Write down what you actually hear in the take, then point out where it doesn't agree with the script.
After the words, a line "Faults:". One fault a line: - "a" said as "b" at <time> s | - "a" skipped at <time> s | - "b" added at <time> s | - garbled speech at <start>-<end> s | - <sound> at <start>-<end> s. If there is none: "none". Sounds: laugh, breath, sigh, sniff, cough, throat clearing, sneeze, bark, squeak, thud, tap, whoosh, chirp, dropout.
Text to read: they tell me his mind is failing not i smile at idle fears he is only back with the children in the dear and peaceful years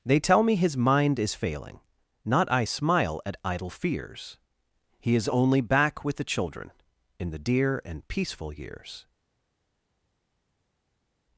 they tell me his mind is failing not i smile at idle fears he is only back with the children in the dear and peaceful years
Faults:
none